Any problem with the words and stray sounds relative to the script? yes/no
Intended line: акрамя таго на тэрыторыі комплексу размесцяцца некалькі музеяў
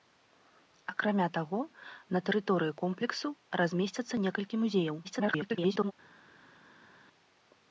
yes